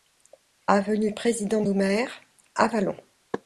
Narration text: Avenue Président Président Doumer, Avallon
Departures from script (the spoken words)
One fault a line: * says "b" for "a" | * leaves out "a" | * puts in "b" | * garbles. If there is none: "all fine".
* leaves out "Président"